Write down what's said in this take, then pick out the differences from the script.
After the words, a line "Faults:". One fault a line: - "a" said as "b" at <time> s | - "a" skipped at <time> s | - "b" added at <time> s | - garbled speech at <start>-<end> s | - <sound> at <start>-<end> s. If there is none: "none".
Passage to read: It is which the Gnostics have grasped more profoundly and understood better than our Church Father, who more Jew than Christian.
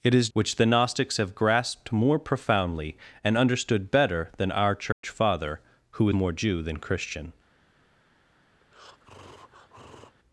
It is which the Gnostics have grasped more profoundly and understood better than our Church Father, who more Jew than Christian.
Faults:
- dropout at 4.9-5.0 s
- breath at 8.6-10.2 s